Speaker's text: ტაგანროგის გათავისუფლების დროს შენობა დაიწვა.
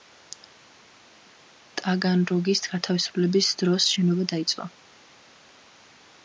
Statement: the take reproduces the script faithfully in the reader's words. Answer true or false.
true